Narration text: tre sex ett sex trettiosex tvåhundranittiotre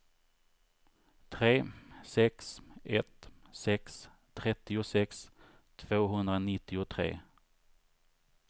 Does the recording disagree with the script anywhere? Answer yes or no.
no